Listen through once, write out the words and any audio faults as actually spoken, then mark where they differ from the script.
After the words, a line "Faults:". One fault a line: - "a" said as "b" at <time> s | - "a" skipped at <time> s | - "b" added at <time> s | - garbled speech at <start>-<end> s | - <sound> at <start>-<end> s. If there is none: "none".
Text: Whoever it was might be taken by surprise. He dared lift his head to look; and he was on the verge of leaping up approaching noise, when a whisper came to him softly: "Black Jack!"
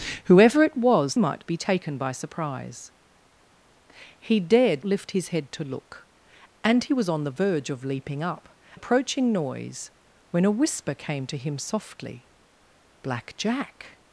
Whoever it was might be taken by surprise. He dared lift his head to look; and he was on the verge of leaping up approaching noise, when a whisper came to him softly: "Black Jack!"
Faults:
none